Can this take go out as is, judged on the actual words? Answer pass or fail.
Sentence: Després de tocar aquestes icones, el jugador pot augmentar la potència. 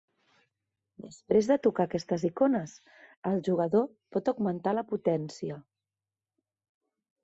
pass